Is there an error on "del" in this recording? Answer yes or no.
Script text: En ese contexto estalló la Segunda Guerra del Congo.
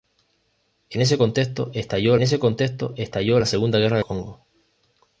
yes